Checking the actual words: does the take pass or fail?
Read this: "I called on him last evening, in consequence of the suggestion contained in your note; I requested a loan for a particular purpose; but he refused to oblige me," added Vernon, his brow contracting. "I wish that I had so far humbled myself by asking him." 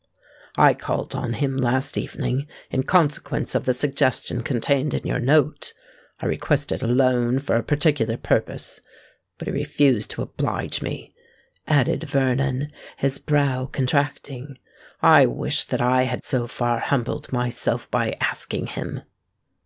pass